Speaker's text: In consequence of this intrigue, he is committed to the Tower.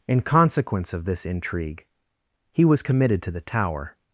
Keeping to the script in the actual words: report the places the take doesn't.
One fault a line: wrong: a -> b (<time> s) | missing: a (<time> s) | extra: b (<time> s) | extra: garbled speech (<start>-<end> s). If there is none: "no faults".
wrong: is -> was (2.6 s)